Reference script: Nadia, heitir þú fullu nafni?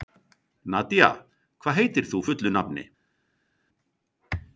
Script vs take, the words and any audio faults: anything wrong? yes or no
yes